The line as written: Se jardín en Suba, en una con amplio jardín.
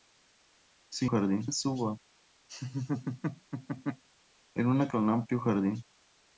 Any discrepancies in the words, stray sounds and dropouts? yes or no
yes